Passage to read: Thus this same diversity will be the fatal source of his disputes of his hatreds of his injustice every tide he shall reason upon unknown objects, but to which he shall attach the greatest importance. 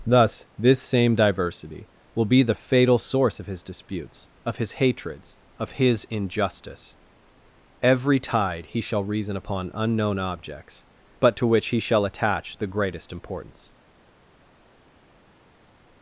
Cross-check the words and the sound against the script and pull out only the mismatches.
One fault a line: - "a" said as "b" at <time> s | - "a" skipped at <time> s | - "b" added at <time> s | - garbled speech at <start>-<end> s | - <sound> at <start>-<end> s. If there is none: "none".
none